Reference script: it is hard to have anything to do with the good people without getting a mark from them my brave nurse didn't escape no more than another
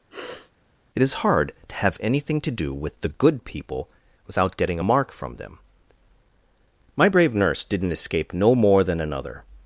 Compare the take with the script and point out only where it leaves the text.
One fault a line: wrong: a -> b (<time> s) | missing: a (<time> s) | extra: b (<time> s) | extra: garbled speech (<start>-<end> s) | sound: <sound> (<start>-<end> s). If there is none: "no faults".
sound: sniff (0.1-0.5 s)